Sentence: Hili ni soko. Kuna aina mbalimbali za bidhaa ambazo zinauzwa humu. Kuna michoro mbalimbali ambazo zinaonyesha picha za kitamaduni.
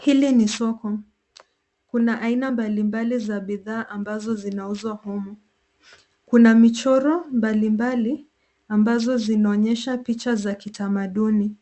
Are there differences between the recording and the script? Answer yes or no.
no